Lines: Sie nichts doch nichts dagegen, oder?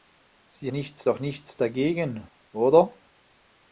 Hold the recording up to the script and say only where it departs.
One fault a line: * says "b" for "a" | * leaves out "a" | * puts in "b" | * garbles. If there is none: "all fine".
all fine